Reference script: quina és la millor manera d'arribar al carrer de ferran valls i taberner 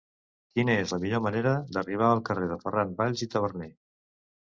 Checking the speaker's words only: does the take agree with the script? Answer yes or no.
yes